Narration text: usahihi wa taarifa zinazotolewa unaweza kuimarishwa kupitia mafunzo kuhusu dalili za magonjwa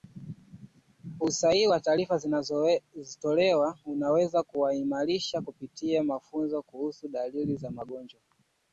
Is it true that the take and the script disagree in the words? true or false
false